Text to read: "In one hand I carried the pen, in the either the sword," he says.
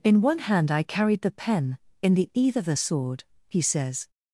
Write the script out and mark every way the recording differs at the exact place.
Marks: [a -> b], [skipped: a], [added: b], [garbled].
"In one hand I carried the pen, in the either the sword," he says.